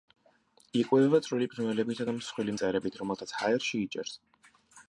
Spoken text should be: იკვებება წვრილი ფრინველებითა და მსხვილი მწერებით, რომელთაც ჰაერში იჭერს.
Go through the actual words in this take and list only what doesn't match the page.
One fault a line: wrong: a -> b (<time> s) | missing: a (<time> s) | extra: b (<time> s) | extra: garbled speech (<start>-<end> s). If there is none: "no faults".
no faults